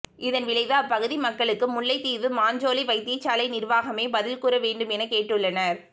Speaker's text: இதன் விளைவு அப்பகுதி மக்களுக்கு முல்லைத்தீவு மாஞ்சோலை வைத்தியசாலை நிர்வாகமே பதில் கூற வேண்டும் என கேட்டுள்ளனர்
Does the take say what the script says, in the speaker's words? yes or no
yes